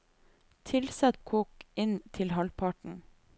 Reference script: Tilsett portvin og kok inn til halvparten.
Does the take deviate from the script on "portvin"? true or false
true